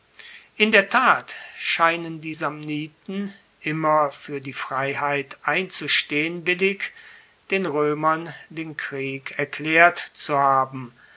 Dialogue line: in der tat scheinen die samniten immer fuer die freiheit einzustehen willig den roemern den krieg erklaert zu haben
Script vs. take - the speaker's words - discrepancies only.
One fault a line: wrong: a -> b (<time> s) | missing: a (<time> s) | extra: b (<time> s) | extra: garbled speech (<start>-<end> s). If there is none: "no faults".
no faults